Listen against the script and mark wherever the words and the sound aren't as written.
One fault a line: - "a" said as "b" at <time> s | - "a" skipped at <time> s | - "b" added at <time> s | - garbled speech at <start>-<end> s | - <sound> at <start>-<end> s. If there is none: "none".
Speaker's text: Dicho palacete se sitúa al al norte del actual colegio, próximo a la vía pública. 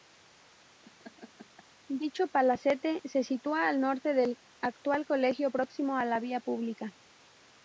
- laugh at 0.8-1.6 s
- "al" skipped at 3.8 s